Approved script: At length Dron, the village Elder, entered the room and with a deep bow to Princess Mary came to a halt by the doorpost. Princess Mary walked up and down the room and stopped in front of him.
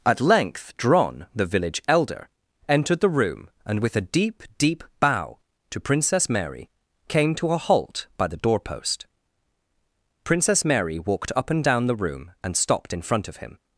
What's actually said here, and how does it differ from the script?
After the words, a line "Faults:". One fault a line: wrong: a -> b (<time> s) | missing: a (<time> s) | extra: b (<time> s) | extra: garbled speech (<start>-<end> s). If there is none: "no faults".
At length Dron, the village Elder, entered the room and with a deep deep bow to Princess Mary came to a halt by the doorpost. Princess Mary walked up and down the room and stopped in front of him.
Faults:
extra: deep (4.6 s)